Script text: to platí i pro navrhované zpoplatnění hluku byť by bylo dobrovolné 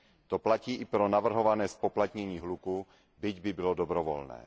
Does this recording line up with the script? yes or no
yes